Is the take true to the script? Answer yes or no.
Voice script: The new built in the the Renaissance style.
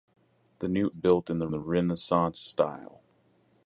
yes